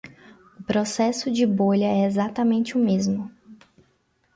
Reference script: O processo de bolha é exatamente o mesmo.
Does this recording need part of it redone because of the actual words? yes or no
no